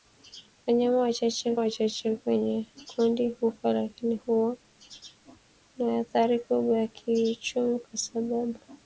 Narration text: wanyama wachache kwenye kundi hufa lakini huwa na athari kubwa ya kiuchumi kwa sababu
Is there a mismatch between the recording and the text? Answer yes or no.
yes